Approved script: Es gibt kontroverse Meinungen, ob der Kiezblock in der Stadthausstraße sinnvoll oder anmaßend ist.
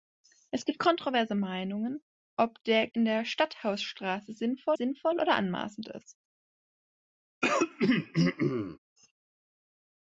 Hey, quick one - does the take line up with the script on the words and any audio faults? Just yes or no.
no